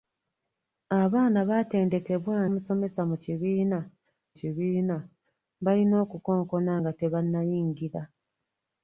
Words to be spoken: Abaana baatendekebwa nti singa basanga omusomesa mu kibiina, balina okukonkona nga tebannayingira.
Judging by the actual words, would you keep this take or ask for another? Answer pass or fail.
fail